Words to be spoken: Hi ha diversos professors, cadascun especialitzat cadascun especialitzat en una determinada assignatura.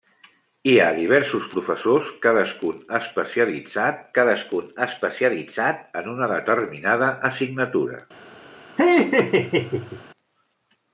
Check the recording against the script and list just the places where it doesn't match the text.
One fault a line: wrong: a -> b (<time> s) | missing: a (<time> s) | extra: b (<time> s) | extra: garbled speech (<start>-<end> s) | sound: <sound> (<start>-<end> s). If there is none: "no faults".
sound: laugh (8.8-10.0 s)